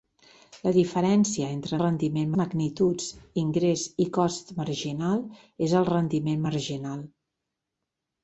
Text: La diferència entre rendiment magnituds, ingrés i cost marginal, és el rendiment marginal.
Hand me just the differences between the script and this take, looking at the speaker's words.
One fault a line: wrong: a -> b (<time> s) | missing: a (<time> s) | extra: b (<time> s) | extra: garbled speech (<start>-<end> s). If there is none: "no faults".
no faults